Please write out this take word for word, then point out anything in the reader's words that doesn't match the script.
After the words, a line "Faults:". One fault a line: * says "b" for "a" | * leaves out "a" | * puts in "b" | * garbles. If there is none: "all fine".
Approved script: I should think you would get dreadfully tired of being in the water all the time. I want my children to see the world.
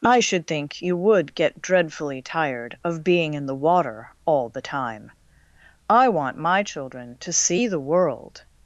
I should think you would get dreadfully tired of being in the water all the time. I want my children to see the world.
Faults:
all fine